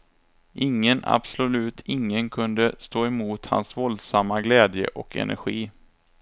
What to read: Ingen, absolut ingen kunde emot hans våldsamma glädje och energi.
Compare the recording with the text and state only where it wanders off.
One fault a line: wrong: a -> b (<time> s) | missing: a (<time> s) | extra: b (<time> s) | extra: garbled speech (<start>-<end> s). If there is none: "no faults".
extra: stå (2.8 s)